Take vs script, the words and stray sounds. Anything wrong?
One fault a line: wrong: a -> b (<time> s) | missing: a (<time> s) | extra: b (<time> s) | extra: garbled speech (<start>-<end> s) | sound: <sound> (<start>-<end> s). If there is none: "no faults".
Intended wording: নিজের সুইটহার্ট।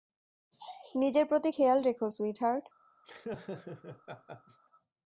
extra: প্রতি খেয়াল রেখো (1.2 s)
sound: laugh (3.0-4.6 s)